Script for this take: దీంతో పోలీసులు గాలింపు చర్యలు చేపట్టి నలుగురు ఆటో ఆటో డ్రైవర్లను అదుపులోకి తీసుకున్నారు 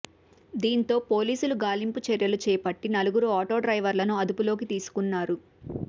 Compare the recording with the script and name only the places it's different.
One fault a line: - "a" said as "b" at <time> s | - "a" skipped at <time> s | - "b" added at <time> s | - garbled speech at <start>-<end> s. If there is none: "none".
- "ఆటో" skipped at 3.6 s